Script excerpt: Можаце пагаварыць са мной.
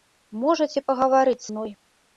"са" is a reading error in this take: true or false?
true